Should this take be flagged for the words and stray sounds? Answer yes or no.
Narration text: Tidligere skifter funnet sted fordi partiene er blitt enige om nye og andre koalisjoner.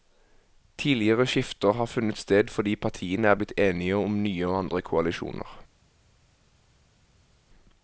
yes